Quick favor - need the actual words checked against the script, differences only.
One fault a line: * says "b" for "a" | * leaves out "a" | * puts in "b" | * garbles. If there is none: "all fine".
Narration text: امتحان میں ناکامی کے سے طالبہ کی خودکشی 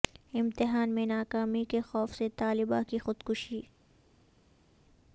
* puts in "خوف"